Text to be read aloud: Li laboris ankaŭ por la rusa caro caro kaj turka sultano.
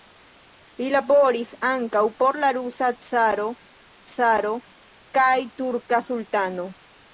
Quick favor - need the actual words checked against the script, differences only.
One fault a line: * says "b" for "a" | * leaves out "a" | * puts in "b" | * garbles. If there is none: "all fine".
all fine